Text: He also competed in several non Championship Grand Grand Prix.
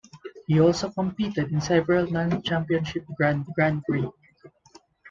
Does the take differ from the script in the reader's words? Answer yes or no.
no